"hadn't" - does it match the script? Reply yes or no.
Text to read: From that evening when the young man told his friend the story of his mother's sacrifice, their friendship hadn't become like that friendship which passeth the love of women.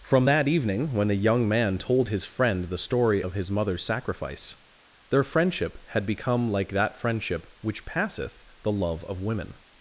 no